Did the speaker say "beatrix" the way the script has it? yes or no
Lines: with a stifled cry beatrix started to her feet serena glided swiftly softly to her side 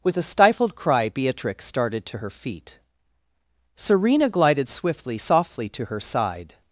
yes